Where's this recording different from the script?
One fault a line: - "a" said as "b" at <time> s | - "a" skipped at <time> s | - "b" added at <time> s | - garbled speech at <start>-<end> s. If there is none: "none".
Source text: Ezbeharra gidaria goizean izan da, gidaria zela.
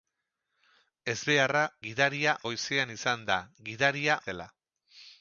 none